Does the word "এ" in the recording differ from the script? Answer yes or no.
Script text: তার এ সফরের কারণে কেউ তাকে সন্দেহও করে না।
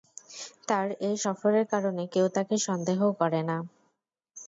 no